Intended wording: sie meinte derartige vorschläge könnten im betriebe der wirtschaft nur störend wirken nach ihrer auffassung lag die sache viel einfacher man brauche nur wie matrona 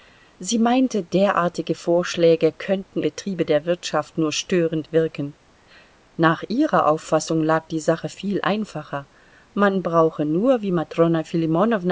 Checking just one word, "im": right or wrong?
wrong